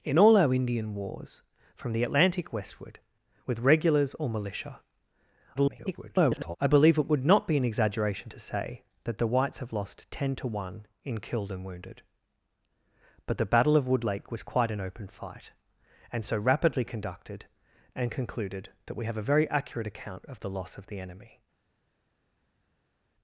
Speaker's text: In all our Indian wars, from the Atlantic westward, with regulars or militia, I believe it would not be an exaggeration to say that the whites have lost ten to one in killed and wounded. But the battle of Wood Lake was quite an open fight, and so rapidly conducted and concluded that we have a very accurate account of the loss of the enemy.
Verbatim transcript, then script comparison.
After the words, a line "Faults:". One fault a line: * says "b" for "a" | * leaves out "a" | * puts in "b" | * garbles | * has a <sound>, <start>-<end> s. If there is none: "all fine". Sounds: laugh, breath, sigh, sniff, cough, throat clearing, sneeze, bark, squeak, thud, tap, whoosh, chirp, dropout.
In all our Indian wars, from the Atlantic westward, with regulars or militia, [garbled] I believe it would not be an exaggeration to say that the whites have lost ten to one in killed and wounded. But the battle of Wood Lake was quite an open fight, and so rapidly conducted and concluded that we have a very accurate account of the loss of the enemy.
Faults:
* garbles